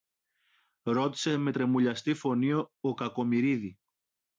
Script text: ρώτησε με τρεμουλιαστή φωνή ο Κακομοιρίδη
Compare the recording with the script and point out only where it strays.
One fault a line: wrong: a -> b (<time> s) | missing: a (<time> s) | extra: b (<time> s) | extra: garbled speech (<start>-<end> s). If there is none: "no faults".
no faults